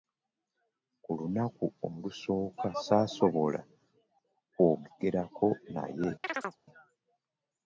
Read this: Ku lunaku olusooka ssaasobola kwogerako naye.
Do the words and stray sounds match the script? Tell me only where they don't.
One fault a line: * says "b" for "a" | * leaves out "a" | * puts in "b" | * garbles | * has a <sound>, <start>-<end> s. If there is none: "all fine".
* has a chirp, 6.2-6.6 s